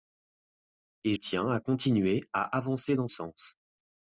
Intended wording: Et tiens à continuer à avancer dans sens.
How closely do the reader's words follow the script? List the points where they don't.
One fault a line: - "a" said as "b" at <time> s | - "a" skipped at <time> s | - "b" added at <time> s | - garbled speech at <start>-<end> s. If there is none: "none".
none